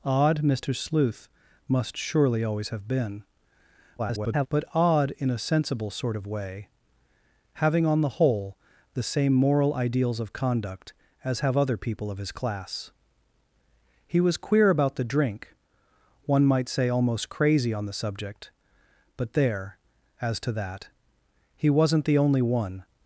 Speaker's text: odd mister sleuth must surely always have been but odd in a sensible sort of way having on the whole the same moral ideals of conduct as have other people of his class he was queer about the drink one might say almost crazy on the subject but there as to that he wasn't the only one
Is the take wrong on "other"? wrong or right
right